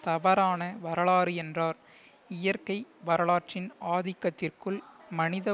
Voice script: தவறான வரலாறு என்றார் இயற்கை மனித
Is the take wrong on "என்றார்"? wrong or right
right